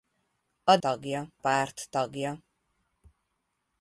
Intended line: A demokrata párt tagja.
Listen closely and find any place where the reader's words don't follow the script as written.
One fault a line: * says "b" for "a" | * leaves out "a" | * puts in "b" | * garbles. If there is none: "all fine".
* says "tagja" for "demokrata"